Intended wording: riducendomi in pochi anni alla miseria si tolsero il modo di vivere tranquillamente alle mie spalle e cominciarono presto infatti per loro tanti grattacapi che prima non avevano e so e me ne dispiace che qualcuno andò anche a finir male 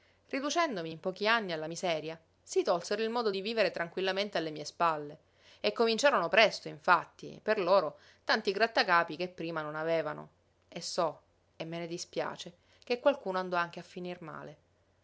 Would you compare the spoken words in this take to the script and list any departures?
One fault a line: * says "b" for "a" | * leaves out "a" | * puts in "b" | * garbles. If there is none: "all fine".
all fine